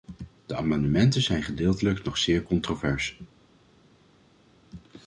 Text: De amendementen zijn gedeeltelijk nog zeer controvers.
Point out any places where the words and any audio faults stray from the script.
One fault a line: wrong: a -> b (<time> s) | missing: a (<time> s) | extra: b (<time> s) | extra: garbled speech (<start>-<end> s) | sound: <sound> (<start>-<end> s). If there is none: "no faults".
no faults